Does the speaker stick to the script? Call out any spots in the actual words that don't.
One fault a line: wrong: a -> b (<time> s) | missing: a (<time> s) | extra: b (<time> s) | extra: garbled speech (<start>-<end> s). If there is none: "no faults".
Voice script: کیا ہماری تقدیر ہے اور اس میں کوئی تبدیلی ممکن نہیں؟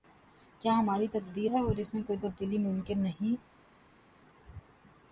no faults